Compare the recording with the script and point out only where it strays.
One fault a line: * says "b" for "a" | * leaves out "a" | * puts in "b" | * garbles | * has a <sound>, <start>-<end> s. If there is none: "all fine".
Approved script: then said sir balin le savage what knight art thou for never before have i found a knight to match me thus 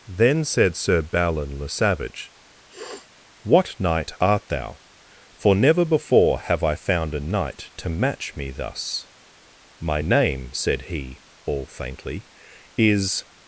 * has a sniff, 2.7-3.1 s
* puts in "my name said he all faintly is"